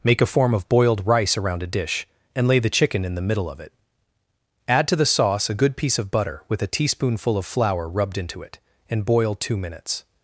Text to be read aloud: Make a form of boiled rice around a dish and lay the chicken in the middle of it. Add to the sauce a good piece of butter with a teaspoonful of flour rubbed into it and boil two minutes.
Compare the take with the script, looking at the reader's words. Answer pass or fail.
pass